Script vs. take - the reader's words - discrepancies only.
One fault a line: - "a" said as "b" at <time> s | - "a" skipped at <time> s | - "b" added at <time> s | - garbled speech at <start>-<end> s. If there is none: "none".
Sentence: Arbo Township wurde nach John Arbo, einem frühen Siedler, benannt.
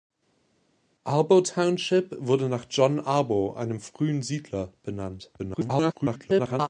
- garbled speech at 5.4-6.7 s